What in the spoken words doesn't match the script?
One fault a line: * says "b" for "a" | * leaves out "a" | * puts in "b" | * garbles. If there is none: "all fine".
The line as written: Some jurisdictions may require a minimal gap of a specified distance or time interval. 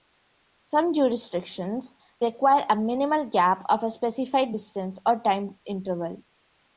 * leaves out "may"